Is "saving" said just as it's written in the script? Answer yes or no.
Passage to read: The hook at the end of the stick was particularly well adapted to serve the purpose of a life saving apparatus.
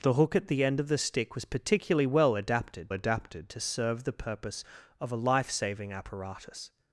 yes